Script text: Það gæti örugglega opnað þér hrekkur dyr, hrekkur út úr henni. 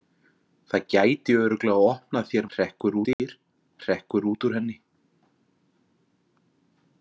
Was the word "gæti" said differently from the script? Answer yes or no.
no